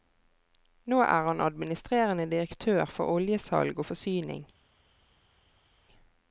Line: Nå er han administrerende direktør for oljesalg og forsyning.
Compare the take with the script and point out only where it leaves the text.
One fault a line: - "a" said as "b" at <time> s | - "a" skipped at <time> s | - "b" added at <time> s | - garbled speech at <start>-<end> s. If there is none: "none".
none